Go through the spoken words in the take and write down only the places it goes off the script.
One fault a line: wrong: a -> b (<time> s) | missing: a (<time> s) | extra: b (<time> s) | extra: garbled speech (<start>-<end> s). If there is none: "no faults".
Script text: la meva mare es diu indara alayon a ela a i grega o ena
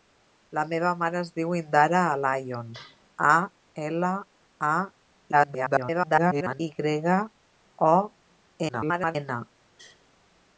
extra: garbled speech (5.3-6.6 s)
extra: garbled speech (8.7-9.2 s)